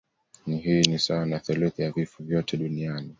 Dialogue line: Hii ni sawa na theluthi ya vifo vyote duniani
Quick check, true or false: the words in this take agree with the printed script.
true